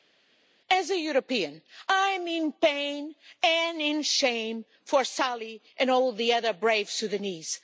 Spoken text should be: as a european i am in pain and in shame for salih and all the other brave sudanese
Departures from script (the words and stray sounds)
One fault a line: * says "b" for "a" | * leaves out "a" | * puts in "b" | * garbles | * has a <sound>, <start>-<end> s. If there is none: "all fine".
all fine